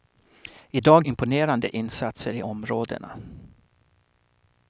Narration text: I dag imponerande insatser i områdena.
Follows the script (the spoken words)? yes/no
yes